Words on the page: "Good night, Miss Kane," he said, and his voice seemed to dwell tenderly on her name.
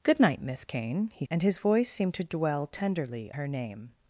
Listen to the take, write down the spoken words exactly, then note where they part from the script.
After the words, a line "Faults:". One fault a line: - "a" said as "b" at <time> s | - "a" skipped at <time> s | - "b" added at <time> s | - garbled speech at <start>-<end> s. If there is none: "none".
"Good night, Miss Kane," he and his voice seemed to dwell tenderly her name.
Faults:
- "said" skipped at 1.2 s
- "on" skipped at 3.3 s